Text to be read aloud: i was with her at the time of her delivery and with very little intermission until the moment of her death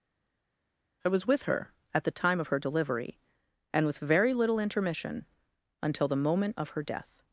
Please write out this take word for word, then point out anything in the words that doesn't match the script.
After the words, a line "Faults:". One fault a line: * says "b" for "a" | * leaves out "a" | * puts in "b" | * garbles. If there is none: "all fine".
i was with her at the time of her delivery and with very little intermission until the moment of her death
Faults:
all fine